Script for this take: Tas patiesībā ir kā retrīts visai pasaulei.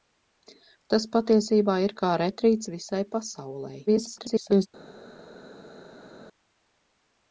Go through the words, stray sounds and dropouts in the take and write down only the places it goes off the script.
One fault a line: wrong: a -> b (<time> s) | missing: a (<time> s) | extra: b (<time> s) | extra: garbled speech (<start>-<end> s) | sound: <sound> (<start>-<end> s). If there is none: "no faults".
extra: garbled speech (3.9-4.7 s)